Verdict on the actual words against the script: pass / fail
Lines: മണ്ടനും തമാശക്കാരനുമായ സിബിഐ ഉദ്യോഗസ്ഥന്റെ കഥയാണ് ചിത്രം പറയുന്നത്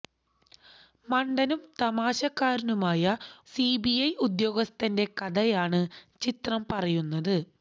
pass